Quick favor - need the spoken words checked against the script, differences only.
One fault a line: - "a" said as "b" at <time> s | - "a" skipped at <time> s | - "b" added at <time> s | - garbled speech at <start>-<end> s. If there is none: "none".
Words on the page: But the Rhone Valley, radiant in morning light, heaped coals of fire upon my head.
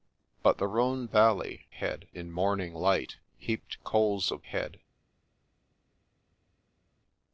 - "radiant" said as "head" at 1.7 s
- "fire upon my" skipped at 4.4 s